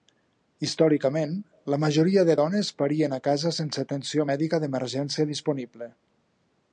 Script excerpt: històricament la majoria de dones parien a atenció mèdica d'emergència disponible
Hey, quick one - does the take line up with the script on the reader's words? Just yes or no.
no